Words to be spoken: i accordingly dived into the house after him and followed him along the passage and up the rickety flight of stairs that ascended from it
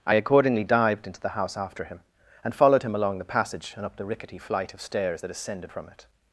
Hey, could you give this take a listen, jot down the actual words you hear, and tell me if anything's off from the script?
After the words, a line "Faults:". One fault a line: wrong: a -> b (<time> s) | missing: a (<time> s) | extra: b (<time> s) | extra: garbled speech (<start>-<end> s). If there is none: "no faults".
i accordingly dived into the house after him and followed him along the passage and up the rickety flight of stairs that ascended from it
Faults:
no faults